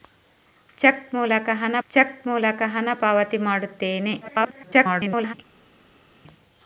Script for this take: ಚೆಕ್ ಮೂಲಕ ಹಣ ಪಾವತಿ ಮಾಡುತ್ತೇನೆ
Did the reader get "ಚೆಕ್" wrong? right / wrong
right